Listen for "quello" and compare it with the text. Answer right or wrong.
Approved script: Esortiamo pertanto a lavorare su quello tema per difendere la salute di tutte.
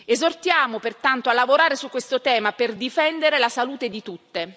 wrong